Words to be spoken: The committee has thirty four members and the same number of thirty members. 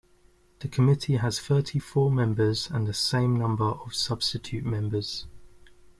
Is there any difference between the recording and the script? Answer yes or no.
yes